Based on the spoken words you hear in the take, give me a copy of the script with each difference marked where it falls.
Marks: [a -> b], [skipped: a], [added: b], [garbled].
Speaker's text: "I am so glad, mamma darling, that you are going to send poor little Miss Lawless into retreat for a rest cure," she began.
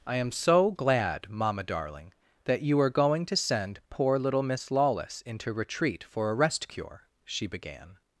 "I am so glad, mamma darling, that you are going to send poor little Miss Lawless into retreat for a rest cure," she began.